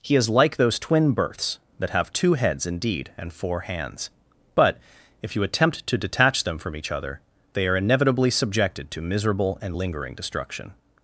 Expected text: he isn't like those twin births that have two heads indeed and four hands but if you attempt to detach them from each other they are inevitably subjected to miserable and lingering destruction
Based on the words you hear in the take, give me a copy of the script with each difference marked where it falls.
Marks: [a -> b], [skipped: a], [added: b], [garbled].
he [isn't -> is] like those twin births that have two heads indeed and four hands but if you attempt to detach them from each other they are inevitably subjected to miserable and lingering destruction